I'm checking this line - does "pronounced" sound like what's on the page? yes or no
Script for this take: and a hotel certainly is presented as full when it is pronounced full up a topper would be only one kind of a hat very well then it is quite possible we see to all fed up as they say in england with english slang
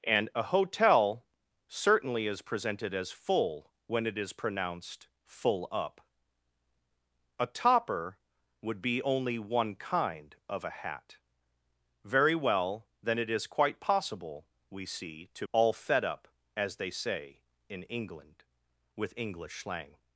yes